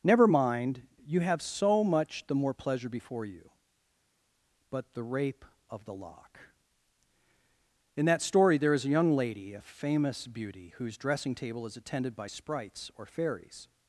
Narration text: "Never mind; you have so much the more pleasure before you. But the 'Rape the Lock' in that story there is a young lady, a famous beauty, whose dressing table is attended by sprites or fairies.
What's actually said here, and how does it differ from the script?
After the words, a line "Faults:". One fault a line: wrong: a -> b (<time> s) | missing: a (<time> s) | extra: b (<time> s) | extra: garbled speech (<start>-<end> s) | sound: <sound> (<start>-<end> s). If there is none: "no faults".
"Never mind; you have so much the more pleasure before you. But the 'Rape of the Lock' in that story there is a young lady, a famous beauty, whose dressing table is attended by sprites or fairies.
Faults:
extra: of (5.7 s)